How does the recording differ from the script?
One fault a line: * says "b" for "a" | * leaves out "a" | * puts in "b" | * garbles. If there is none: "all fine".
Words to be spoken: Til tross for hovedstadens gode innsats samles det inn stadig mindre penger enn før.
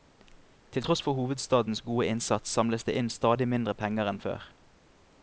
all fine